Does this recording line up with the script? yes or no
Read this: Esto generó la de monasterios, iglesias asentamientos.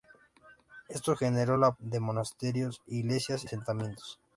yes